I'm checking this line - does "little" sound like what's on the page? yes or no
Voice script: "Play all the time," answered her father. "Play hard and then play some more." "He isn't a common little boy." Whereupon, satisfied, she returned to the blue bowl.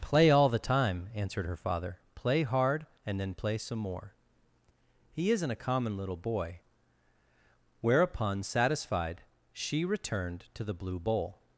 yes